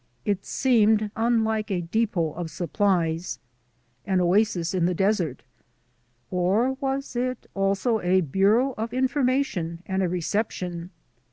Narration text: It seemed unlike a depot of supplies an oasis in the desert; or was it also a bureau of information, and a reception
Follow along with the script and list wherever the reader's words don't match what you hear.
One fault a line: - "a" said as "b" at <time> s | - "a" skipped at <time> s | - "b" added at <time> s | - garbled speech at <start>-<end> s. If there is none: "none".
none